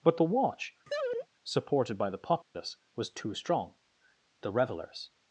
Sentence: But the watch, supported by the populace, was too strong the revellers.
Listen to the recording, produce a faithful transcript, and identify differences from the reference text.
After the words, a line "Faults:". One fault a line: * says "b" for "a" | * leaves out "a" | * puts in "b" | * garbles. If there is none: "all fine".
But the watch, supported by the populace, was too strong the revellers.
Faults:
all fine